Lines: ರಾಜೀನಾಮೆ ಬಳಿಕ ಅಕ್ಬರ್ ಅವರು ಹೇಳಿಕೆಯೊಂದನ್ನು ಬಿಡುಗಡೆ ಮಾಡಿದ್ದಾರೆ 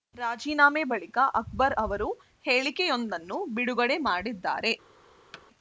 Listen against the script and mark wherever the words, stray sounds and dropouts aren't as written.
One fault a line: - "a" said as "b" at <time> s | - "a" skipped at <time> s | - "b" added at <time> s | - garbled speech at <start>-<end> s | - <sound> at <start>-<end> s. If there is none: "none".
- thud at 5.3-5.5 s